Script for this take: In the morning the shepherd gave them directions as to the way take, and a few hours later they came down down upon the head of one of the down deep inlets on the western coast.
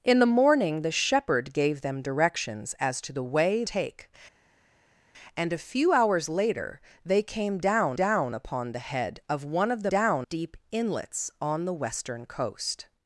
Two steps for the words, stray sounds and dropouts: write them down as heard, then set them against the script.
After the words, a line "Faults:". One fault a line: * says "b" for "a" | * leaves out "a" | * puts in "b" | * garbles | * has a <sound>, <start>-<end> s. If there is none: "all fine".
In the morning the shepherd gave them directions as to the way take, and a few hours later they came down down upon the head of one of the down deep inlets on the western coast.
Faults:
all fine